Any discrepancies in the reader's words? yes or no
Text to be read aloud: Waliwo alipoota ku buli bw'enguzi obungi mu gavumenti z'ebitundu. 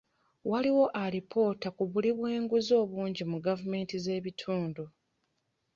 no